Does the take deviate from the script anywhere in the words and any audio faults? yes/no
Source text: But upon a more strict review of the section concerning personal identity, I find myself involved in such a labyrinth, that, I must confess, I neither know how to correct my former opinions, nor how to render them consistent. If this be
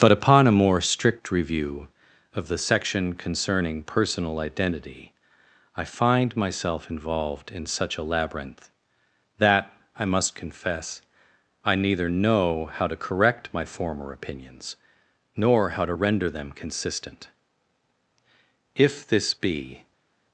no